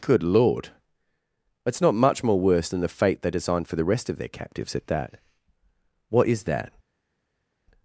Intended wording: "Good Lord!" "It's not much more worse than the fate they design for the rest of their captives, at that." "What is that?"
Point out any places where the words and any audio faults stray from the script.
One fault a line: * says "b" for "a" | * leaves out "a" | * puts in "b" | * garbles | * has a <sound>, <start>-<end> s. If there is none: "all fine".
* says "designed" for "design"